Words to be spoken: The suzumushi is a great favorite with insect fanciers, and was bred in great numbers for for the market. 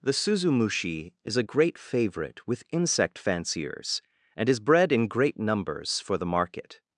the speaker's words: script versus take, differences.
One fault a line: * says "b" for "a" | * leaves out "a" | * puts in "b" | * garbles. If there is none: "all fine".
* says "is" for "was"
* leaves out "for"